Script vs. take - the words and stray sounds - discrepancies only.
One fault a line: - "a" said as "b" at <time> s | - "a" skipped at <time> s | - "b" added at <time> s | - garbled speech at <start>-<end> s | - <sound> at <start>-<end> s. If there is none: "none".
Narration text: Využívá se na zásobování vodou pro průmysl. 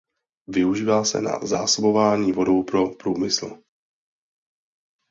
none